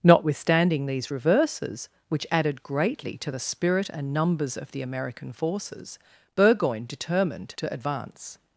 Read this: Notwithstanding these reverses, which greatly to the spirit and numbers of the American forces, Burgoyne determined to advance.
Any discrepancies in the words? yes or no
yes